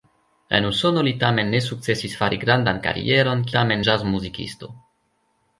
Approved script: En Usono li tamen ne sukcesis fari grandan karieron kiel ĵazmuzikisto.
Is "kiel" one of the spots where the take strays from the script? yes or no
yes